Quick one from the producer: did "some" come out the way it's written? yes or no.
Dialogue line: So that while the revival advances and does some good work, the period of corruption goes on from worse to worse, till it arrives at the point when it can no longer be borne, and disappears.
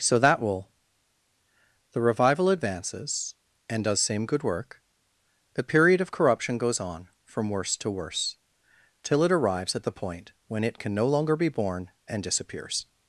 no